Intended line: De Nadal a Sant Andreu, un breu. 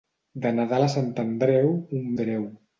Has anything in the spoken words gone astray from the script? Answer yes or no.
no